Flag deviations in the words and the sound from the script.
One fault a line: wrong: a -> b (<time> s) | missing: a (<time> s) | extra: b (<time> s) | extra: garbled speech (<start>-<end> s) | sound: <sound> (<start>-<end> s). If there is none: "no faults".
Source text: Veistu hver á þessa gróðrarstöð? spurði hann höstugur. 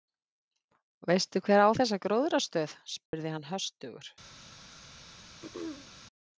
sound: dropout (3.1-3.1 s)
sound: throat clearing (5.4-5.9 s)